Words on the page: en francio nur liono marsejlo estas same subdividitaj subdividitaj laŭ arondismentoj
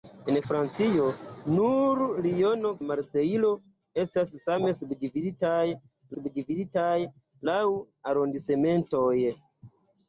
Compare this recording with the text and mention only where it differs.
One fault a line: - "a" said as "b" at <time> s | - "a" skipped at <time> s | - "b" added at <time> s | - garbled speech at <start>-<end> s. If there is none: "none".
none